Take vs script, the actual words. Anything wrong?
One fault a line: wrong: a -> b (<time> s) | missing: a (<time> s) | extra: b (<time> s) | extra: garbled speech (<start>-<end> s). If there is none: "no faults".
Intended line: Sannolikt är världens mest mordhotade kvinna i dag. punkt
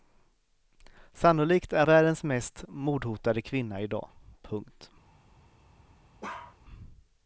no faults